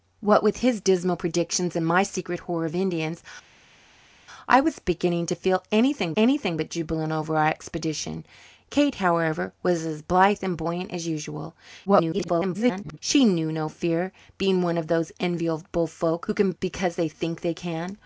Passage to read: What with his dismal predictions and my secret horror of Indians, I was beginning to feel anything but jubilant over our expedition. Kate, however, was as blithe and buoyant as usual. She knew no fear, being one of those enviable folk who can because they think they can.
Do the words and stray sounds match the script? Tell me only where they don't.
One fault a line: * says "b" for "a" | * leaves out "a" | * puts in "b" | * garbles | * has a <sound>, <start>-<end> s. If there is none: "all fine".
* puts in "anything"
* garbles